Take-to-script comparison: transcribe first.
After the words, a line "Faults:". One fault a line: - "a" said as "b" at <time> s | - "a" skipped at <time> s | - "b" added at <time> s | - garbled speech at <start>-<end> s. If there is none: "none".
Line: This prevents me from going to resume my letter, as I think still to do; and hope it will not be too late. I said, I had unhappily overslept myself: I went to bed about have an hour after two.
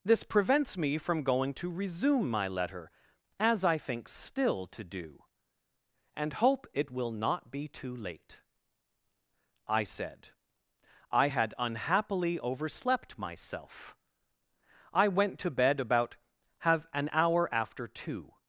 This prevents me from going to resume my letter, as I think still to do; and hope it will not be too late. I said, I had unhappily overslept myself: I went to bed about have an hour after two.
Faults:
none